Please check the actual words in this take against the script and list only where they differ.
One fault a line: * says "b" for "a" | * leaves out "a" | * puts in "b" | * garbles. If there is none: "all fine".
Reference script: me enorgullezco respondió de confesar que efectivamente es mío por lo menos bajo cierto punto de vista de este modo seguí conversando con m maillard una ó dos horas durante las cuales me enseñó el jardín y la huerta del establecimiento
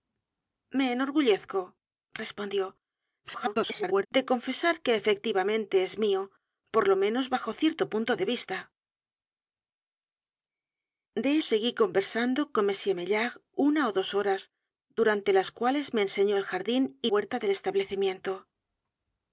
* garbles
* leaves out "este modo"
* leaves out "la"